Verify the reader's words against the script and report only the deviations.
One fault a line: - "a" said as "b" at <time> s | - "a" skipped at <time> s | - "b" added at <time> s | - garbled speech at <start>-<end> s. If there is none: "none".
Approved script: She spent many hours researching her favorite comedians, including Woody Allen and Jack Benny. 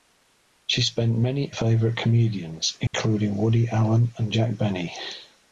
- "hours researching her" skipped at 1.5 s